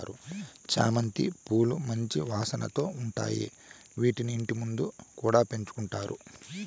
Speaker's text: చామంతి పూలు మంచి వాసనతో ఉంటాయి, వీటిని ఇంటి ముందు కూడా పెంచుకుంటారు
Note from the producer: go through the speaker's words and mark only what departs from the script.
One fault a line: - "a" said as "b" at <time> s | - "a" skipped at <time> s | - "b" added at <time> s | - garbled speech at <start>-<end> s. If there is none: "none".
none